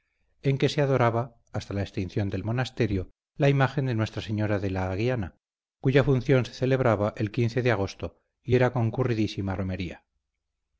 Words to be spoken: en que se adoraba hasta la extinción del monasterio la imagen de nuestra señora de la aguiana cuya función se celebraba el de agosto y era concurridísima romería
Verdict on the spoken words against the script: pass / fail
pass